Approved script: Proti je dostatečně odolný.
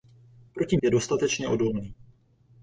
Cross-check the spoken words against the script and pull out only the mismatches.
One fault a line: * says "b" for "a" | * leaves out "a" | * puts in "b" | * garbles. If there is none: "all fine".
all fine